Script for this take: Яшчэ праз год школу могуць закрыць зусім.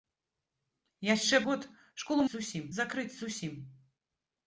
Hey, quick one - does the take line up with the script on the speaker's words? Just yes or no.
no